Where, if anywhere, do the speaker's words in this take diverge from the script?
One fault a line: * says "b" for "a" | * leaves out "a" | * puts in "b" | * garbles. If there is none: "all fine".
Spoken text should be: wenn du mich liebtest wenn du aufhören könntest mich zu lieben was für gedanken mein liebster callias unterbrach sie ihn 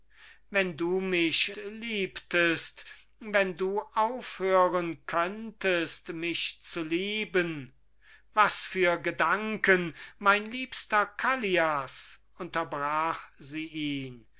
all fine